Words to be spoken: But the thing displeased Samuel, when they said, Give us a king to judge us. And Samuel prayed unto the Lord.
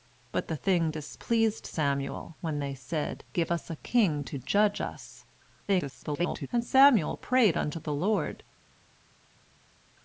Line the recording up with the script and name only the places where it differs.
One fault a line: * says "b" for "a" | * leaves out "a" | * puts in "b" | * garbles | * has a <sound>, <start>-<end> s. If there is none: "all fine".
* garbles